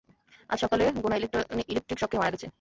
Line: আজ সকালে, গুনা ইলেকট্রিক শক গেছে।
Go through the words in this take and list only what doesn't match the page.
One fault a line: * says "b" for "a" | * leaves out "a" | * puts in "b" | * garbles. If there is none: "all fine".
* puts in "খেয়ে মারা"